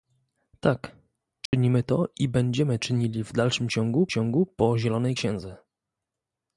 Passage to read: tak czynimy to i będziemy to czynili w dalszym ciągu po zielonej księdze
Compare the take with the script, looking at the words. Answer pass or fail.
fail